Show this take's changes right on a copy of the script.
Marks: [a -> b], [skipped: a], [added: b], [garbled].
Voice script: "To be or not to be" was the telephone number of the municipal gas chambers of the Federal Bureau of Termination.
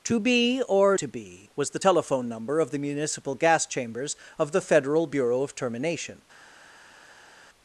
"To be or [skipped: not] to be" was the telephone number of the municipal gas chambers of the Federal Bureau of Termination.